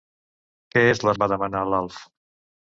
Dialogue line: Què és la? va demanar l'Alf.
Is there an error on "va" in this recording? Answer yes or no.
no